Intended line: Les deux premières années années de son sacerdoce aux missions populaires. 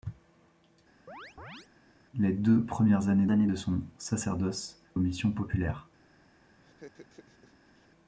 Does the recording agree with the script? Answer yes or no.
yes